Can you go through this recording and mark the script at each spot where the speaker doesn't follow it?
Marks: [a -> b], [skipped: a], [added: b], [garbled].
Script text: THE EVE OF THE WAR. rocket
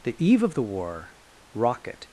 THE EVE OF THE WAR. rocket